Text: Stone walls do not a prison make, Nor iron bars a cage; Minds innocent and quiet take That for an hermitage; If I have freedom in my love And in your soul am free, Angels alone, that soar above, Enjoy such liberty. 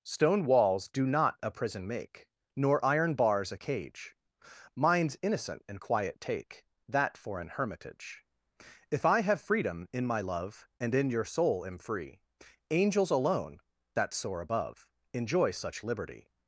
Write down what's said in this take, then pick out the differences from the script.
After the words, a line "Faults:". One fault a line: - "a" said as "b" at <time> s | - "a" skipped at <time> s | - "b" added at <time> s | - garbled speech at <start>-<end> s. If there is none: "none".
Stone walls do not a prison make, Nor iron bars a cage; Minds innocent and quiet take That for an hermitage; If I have freedom in my love And in your soul am free, Angels alone, that soar above, Enjoy such liberty.
Faults:
none